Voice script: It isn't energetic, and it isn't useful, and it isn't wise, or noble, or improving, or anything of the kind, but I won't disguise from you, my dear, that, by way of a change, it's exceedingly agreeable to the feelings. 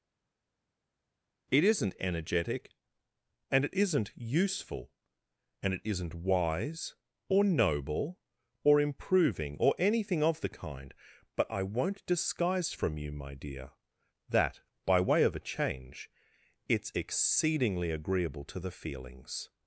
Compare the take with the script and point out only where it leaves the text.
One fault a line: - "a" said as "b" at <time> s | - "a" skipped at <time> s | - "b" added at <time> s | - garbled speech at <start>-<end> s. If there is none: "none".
none